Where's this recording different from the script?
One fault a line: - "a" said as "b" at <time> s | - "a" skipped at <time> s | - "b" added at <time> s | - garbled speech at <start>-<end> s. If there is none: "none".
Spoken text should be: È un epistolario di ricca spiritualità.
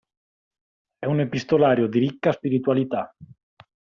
none